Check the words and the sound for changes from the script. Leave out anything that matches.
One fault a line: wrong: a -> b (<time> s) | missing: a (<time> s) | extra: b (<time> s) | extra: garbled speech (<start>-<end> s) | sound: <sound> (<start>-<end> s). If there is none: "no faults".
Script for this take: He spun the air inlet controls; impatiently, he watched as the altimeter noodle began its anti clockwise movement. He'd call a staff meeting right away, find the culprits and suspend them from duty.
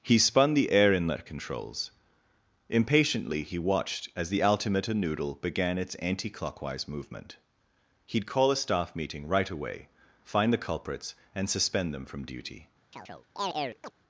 sound: chirp (12.9-13.9 s)